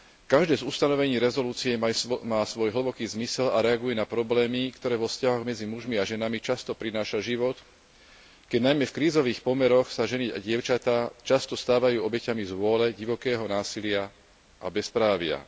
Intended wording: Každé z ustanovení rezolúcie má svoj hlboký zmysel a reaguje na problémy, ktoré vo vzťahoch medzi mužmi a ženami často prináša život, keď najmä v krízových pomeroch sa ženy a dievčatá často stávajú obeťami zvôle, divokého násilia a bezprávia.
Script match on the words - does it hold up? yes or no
yes